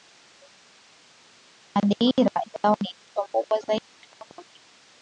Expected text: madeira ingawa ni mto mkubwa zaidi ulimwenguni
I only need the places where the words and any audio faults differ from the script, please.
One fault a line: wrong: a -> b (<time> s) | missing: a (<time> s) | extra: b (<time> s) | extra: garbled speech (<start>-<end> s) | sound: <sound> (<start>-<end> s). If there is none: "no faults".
no faults